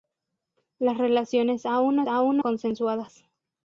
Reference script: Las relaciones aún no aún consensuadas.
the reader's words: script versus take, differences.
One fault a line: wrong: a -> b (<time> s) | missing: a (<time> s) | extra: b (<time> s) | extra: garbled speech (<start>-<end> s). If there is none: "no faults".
no faults